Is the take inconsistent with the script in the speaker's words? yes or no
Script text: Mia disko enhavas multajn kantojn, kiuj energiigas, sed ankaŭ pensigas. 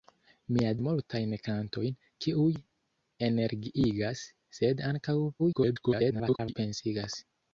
yes